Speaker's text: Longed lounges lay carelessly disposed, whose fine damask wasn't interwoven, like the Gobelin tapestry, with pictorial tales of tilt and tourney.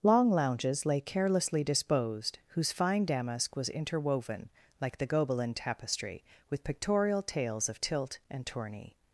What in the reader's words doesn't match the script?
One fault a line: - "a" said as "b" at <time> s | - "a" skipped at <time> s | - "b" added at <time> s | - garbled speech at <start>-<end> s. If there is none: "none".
- "Longed" said as "Long" at 0.0 s
- "wasn't" said as "was" at 3.5 s